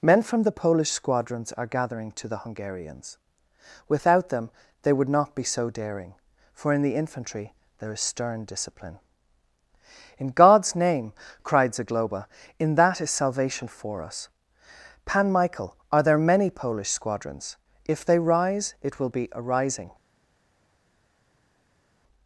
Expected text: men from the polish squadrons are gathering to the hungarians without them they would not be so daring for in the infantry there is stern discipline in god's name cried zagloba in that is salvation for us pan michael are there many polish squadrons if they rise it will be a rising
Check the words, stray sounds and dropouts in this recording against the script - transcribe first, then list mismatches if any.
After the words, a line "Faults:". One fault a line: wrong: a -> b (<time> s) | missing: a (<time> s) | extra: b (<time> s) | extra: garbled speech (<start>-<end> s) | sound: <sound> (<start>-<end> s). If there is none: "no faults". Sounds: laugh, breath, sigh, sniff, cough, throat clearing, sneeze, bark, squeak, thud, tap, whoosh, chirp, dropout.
men from the polish squadrons are gathering to the hungarians without them they would not be so daring for in the infantry there is stern discipline in god's name cried zagloba in that is salvation for us pan michael are there many polish squadrons if they rise it will be a rising
Faults:
no faults